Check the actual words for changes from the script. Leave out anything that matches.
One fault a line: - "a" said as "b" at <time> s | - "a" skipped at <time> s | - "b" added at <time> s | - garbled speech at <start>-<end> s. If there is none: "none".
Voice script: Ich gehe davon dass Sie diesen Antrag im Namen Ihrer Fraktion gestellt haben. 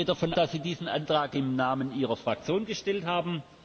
none